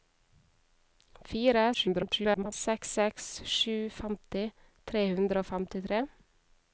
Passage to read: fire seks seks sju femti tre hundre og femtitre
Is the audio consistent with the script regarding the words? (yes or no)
no